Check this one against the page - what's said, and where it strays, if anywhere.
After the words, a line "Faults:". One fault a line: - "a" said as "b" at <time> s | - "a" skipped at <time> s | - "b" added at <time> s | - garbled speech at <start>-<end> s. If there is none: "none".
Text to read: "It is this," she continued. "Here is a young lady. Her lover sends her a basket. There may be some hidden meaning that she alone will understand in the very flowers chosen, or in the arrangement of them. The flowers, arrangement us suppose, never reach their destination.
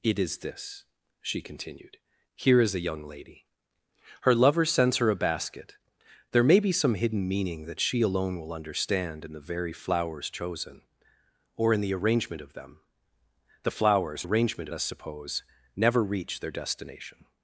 "It is this," she continued. "Here is a young lady. Her lover sends her a basket. There may be some hidden meaning that she alone will understand in the very flowers chosen, or in the arrangement of them. The flowers, arrangement us suppose, never reach their destination.
Faults:
none